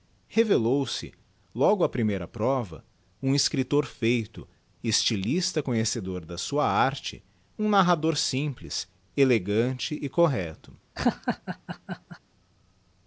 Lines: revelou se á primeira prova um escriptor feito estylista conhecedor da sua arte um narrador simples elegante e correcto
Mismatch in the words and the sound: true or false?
true